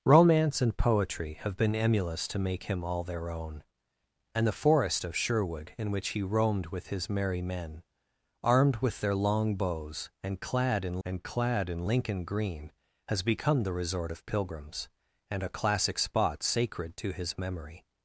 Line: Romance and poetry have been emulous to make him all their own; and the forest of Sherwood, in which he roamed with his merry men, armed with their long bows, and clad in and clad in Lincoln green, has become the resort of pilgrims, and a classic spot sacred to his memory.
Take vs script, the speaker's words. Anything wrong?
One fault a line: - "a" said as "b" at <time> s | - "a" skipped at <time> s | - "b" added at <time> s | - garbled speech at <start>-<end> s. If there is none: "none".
none